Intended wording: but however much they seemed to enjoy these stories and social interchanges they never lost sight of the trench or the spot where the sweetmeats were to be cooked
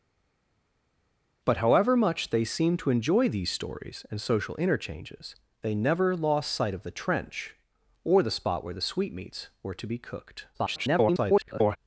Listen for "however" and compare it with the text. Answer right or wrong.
right